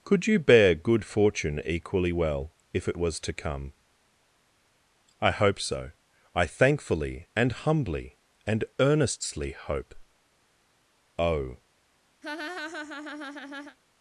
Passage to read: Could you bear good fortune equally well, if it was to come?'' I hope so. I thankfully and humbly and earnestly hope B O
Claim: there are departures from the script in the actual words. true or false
true